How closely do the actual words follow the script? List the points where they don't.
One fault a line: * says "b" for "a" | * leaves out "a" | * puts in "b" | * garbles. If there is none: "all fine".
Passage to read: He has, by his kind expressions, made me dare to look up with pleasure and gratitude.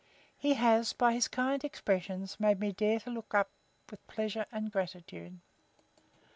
all fine